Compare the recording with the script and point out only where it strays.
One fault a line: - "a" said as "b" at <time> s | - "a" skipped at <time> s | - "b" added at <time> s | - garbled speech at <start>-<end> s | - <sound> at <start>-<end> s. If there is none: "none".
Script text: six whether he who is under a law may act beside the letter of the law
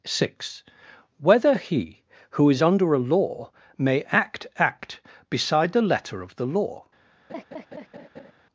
- "act" added at 4.6 s
- laugh at 7.3-8.3 s